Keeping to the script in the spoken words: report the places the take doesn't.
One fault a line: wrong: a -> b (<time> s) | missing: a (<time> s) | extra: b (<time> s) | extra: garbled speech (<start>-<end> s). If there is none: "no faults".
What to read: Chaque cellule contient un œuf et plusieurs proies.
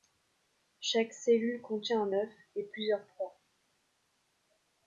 no faults